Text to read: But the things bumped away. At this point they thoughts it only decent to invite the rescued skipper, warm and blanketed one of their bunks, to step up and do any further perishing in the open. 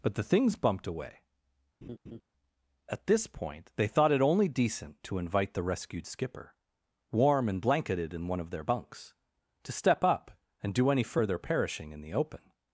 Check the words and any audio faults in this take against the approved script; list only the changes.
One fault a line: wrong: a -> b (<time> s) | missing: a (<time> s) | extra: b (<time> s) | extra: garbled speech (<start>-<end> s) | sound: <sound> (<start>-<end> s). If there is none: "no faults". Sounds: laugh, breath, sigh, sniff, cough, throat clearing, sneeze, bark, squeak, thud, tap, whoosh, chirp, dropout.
sound: laugh (1.8-2.2 s)
wrong: thoughts -> thought (3.9 s)
extra: in (8.1 s)